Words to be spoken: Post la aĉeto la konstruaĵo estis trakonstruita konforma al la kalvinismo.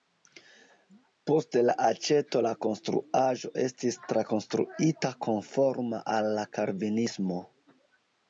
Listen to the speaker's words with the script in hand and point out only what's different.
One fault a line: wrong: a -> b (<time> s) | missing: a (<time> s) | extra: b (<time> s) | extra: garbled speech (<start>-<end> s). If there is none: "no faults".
no faults